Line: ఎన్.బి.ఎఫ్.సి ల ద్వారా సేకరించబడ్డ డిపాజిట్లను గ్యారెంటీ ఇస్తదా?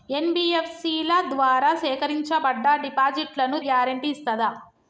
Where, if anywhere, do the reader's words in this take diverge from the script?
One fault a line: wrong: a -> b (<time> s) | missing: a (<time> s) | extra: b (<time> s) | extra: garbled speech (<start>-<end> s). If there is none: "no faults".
no faults